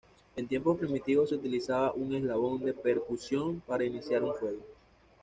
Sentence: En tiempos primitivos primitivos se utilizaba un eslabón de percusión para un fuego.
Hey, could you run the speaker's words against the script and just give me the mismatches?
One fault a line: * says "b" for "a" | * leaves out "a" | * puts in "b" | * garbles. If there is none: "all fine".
* leaves out "primitivos"
* puts in "iniciar"